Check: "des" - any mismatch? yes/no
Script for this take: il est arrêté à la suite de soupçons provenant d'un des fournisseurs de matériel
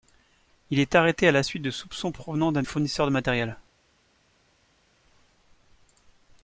yes